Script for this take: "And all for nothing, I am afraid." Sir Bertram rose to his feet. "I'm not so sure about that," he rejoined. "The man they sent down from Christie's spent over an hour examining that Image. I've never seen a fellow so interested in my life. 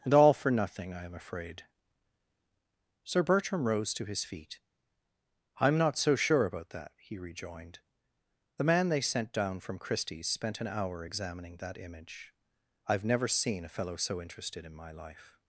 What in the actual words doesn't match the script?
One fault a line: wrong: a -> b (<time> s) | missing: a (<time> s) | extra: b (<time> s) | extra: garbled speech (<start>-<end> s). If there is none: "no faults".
missing: over (10.6 s)